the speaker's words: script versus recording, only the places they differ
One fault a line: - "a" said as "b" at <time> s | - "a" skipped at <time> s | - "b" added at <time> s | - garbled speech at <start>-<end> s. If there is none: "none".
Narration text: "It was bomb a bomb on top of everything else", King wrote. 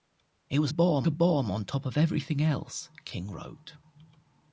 none